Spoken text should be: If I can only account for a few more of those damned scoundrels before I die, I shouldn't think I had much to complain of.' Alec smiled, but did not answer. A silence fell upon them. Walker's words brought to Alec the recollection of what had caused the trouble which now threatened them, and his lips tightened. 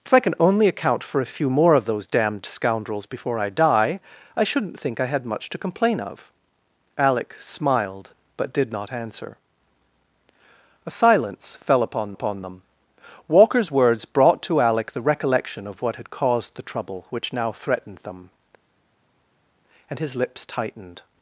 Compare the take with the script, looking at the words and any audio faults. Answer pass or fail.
fail